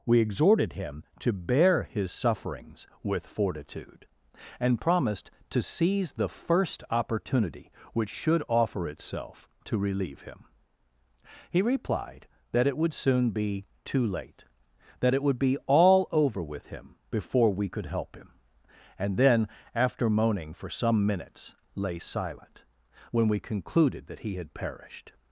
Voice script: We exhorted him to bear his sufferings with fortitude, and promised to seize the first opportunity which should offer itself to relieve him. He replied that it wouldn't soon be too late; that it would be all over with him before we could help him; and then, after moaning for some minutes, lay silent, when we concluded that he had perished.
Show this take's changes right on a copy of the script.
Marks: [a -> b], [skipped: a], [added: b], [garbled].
We exhorted him to bear his sufferings with fortitude, and promised to seize the first opportunity which should offer itself to relieve him. He replied that it [wouldn't -> would] soon be too late; that it would be all over with him before we could help him; and then, after moaning for some minutes, lay silent, when we concluded that he had perished.